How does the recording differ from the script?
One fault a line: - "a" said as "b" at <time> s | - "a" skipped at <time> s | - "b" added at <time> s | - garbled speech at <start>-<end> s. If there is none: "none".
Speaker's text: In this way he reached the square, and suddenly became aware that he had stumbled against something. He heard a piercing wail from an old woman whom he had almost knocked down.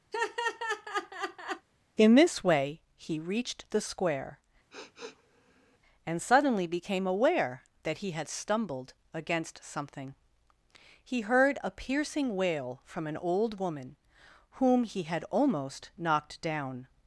none